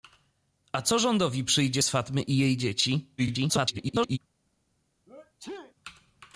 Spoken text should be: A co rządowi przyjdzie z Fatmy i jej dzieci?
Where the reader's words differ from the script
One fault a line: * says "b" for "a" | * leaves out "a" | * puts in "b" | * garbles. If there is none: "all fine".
* garbles